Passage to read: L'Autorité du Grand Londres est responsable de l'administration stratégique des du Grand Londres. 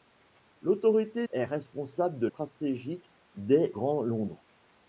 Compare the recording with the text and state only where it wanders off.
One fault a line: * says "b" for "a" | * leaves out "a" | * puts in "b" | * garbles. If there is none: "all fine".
* leaves out "du Grand Londres"
* leaves out "l'administration"
* leaves out "du"